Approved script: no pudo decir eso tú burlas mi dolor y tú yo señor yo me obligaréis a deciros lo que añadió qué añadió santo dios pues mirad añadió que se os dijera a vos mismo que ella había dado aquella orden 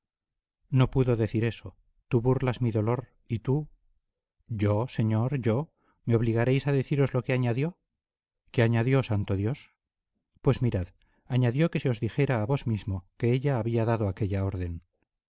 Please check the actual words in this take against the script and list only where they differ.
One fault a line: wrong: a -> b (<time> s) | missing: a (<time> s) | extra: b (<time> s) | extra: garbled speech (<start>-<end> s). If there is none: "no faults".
no faults